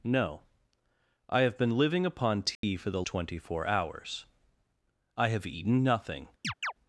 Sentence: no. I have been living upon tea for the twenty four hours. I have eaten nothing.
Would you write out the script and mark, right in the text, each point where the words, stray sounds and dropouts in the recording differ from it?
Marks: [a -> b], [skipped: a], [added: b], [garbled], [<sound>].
no. I have been living upon tea [dropout] for the twenty four hours. I have eaten nothing. [chirp]